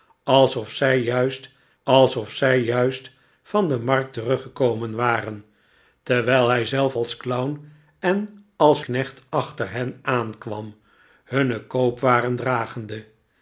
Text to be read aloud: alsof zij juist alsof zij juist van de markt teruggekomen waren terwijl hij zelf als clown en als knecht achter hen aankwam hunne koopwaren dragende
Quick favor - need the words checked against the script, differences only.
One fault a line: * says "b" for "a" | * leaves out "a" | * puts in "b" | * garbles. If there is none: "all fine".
all fine